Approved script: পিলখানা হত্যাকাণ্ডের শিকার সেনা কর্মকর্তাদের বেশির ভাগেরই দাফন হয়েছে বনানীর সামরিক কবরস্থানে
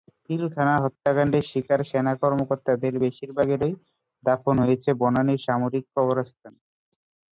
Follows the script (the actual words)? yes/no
yes